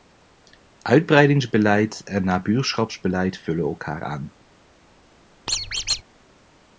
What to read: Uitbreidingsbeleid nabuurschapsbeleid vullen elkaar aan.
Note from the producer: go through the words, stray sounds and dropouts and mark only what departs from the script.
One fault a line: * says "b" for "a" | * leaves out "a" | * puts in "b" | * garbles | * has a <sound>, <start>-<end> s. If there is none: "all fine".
* puts in "en"
* has a squeak, 5.5-6.0 s